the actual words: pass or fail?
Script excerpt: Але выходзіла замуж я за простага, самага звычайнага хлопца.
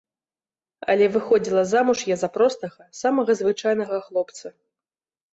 pass